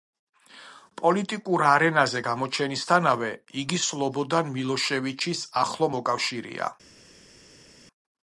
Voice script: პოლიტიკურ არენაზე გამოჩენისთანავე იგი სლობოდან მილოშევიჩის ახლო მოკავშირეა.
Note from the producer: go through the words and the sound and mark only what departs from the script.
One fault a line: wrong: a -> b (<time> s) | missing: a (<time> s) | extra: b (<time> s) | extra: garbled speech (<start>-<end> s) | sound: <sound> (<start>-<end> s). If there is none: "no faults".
no faults